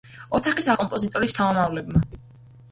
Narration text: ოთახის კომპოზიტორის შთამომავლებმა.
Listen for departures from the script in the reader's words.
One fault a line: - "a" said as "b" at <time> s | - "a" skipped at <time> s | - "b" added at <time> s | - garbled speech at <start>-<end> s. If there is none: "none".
none